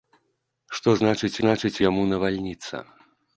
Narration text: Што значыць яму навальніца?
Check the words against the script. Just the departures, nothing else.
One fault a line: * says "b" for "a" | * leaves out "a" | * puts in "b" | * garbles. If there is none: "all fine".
* puts in "значыць"